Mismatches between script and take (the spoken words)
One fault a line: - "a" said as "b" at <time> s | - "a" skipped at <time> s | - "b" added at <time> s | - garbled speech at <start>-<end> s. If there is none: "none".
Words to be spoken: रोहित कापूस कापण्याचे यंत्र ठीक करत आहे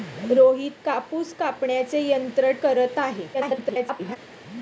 - "ठीक" skipped at 2.5 s
- garbled speech at 3.3-4.2 s